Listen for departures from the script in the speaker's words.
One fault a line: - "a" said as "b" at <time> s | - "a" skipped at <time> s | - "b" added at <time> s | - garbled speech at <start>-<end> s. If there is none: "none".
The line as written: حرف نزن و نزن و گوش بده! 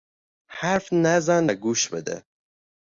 - "نزن و" skipped at 1.5 s